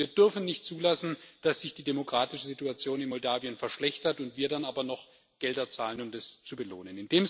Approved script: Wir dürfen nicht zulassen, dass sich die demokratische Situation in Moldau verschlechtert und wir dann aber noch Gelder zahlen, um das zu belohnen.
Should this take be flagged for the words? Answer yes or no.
no